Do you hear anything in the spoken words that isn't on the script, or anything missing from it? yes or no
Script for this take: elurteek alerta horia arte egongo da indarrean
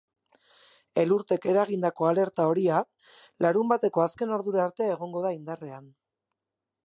yes